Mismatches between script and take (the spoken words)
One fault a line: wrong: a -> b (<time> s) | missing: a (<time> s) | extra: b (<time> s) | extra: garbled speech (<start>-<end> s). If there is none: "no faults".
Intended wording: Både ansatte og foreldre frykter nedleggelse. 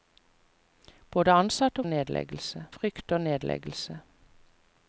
wrong: foreldre -> nedleggelse (1.8 s)